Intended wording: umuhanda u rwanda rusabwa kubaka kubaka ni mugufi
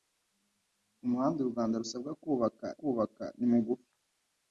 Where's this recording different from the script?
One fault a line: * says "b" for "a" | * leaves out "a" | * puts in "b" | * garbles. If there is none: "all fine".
all fine